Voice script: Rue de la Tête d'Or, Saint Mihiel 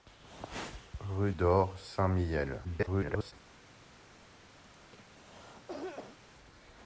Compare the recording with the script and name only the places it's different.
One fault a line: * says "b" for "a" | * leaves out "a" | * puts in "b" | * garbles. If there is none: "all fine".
* leaves out "de la Tête"
* garbles